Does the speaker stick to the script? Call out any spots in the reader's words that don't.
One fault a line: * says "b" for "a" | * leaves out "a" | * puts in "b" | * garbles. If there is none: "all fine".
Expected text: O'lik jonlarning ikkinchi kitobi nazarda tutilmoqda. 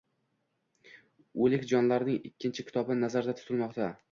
all fine